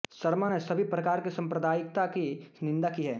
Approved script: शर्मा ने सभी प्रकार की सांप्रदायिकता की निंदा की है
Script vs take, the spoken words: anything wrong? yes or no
no